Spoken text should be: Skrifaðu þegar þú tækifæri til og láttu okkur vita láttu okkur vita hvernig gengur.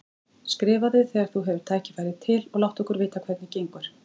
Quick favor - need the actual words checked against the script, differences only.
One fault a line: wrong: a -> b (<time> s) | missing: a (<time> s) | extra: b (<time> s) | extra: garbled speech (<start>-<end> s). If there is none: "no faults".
extra: hefur (1.5 s)
missing: láttu okkur vita (3.3 s)